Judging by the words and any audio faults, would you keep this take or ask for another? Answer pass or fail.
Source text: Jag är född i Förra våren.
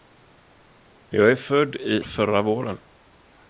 pass